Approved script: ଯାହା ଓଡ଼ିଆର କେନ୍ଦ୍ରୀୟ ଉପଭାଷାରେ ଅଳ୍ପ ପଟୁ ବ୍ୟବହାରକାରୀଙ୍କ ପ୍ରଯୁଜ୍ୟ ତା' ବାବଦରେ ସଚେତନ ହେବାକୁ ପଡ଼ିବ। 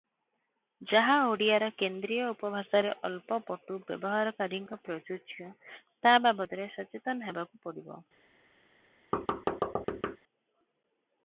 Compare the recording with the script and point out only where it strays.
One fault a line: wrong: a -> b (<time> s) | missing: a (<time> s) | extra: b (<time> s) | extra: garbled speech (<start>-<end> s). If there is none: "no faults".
no faults